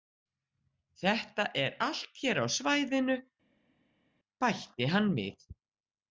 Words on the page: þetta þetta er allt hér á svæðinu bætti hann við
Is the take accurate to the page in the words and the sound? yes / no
no